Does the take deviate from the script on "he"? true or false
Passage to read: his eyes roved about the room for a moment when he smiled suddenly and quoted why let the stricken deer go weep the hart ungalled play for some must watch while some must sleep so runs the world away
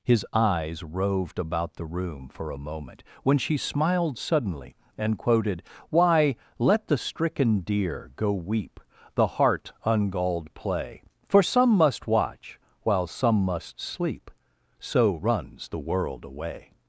true